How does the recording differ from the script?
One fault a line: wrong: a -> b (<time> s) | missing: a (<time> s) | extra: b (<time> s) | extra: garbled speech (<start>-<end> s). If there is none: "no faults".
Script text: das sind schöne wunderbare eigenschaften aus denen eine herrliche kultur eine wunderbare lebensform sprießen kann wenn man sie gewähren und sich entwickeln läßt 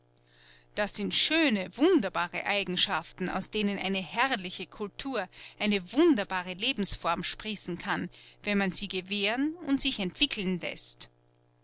no faults